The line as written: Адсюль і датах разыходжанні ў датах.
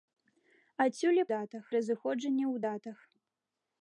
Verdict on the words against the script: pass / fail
pass